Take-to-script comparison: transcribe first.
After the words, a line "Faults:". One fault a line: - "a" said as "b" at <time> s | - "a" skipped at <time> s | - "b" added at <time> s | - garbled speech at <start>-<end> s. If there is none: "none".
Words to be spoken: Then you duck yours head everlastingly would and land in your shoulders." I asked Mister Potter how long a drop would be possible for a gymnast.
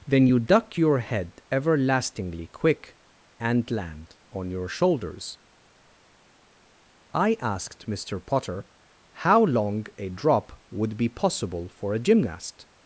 Then you duck your head everlastingly quick and land on your shoulders." I asked Mister Potter how long a drop would be possible for a gymnast.
Faults:
- "yours" said as "your" at 0.8 s
- "would" said as "quick" at 2.5 s
- "in" said as "on" at 4.3 s